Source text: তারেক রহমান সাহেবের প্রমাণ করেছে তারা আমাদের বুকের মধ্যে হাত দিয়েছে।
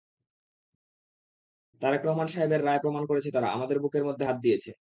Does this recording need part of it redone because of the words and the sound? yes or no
yes